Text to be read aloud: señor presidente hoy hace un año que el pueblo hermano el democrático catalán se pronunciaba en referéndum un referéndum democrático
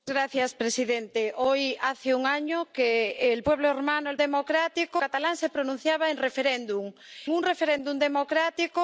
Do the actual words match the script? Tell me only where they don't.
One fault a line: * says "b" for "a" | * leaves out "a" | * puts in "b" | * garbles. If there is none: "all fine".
all fine